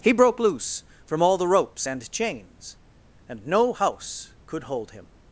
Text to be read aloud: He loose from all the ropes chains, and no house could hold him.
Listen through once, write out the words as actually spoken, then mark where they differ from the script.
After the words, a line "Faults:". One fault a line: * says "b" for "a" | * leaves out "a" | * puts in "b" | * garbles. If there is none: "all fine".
He broke loose from all the ropes and chains, and no house could hold him.
Faults:
* puts in "broke"
* puts in "and"